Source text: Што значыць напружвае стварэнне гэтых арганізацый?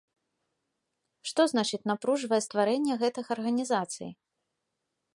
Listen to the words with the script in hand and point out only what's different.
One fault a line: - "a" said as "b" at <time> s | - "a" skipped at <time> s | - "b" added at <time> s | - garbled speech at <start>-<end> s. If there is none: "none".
none